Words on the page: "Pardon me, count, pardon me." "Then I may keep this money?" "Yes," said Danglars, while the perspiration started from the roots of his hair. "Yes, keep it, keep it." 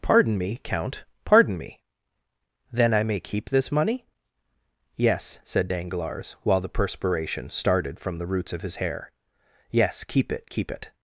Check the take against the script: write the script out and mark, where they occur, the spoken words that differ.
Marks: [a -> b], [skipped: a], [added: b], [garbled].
"Pardon me, count, pardon me." "Then I may keep this money?" "Yes," said Danglars, while the perspiration started from the roots of his hair. "Yes, keep it, keep it."